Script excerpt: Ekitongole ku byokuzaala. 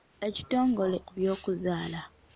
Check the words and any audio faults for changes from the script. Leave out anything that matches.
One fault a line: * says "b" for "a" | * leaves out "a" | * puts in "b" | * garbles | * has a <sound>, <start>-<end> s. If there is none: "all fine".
all fine